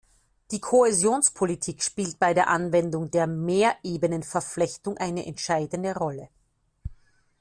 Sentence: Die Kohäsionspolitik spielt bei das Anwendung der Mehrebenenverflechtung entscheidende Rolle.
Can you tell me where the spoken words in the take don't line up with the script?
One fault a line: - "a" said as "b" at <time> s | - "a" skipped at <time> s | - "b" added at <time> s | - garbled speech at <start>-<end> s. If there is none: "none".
- "das" said as "der" at 2.3 s
- "eine" added at 5.0 s